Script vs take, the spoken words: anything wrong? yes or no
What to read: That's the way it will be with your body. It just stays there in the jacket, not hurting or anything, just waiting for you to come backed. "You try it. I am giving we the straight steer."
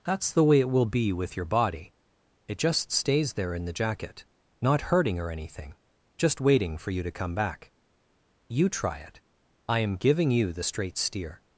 yes